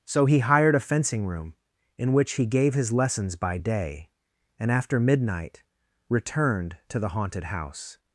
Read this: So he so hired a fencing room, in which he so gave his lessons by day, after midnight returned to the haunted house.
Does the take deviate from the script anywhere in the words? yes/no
yes